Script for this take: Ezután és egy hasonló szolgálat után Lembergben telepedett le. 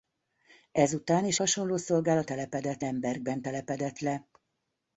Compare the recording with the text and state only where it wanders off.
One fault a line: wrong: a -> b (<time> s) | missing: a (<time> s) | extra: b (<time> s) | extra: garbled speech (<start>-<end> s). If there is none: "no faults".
missing: egy (1.4 s)
wrong: után -> telepedett (2.3 s)